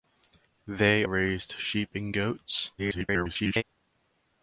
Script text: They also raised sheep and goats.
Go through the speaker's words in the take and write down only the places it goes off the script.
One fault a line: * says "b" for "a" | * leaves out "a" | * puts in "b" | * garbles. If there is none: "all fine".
* leaves out "also"
* garbles